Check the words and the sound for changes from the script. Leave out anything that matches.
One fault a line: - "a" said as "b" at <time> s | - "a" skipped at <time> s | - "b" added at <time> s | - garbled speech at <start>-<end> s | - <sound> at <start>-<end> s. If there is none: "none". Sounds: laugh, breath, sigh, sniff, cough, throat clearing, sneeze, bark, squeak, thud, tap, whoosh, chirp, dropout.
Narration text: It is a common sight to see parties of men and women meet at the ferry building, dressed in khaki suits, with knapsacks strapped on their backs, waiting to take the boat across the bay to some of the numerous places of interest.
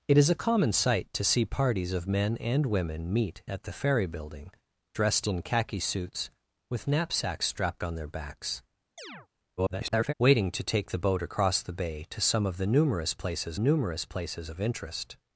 - chirp at 9.0-9.3 s
- garbled speech at 9.6-10.1 s
- "numerous places" added at 13.6 s